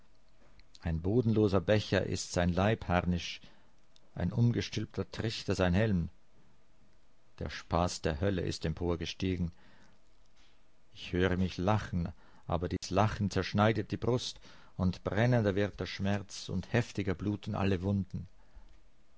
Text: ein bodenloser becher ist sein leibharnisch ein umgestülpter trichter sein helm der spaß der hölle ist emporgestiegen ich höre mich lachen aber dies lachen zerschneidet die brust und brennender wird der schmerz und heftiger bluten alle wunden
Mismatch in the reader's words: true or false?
false